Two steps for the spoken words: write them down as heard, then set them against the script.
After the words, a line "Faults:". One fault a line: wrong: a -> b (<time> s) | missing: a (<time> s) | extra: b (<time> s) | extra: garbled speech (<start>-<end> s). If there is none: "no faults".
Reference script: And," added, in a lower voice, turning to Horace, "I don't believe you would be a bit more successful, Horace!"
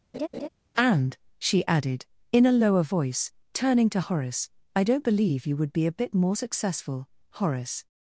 And," she added, in a lower voice, turning to Horace, "I don't believe you would be a bit more successful, Horace!"
Faults:
extra: she (1.4 s)